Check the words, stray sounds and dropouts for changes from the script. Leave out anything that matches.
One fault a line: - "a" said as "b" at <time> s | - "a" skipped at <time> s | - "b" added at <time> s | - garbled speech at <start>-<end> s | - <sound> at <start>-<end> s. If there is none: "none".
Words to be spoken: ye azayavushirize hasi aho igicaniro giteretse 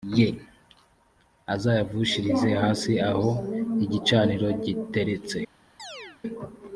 - chirp at 5.8-6.2 s